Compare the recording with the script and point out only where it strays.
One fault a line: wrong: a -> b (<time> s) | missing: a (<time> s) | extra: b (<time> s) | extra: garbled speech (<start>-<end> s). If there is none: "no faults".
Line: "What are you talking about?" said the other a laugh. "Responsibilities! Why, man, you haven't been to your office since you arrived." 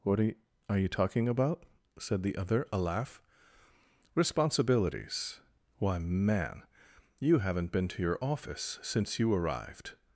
no faults